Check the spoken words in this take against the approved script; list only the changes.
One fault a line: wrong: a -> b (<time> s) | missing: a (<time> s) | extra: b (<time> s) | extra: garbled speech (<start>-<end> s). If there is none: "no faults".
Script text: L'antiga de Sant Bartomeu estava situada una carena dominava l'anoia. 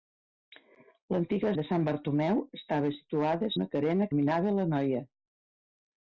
no faults